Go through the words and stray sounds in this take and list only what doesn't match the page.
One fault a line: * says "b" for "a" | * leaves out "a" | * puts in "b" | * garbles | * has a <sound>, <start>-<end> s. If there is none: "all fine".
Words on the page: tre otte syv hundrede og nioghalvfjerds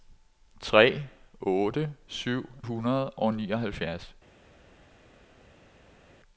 all fine